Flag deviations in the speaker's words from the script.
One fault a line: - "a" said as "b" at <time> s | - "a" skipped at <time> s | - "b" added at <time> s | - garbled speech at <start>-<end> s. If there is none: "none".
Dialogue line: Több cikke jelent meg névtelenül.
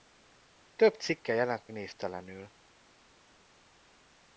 - "meg" skipped at 1.7 s